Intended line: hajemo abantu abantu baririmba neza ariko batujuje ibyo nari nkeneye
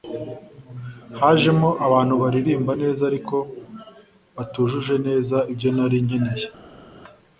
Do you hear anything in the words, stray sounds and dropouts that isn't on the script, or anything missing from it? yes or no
yes